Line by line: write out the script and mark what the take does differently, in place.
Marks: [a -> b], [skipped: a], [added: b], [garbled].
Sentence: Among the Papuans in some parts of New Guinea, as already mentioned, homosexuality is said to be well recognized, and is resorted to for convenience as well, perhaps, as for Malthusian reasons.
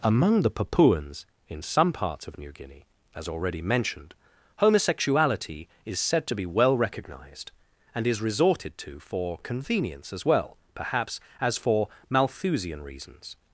Among the Papuans in some parts of New Guinea, as already mentioned, homosexuality is said to be well recognized, and is resorted to for convenience as well, perhaps, as for Malthusian reasons.